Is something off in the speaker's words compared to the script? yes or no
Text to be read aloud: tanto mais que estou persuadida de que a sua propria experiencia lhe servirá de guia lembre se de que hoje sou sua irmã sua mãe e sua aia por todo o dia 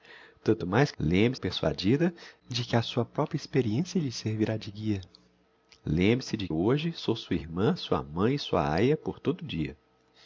yes